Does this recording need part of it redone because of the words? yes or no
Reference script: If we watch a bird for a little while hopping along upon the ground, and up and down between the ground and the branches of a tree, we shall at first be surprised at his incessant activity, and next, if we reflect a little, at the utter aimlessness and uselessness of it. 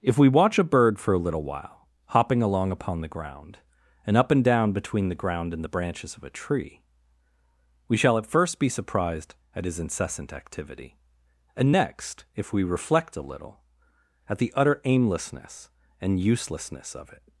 no